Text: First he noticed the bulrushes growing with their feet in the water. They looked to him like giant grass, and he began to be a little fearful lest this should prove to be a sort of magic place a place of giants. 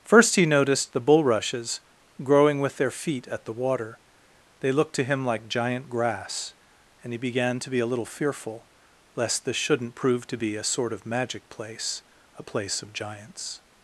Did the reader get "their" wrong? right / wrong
right